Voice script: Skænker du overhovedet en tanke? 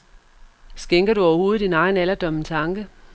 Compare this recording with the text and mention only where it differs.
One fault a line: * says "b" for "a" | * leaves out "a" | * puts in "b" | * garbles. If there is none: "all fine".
* puts in "din egen alderdom"